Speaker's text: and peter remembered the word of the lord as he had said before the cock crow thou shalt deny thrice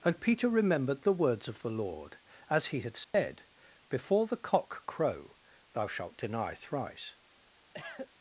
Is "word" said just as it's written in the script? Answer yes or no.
no